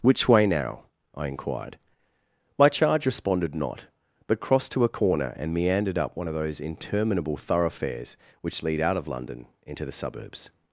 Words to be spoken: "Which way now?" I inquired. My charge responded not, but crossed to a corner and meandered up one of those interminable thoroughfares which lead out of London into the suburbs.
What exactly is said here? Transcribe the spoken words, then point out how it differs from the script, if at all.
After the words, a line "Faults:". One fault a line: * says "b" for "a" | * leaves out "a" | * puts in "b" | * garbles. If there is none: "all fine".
"Which way now?" I inquired. My charge responded not, but crossed to a corner and meandered up one of those interminable thoroughfares which lead out of London into the suburbs.
Faults:
all fine